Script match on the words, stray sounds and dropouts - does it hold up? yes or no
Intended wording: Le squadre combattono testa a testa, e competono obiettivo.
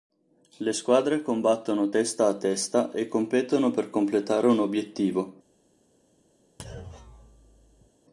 no